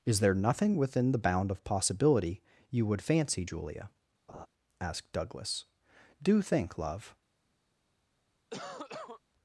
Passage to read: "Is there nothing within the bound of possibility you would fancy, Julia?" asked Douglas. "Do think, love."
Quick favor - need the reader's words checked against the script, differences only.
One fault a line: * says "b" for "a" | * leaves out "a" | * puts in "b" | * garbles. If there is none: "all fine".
all fine